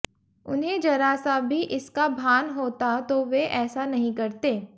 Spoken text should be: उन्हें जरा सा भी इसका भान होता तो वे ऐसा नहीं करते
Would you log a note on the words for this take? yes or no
no